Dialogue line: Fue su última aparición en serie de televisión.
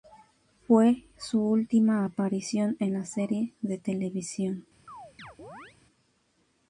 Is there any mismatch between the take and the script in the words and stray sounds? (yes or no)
yes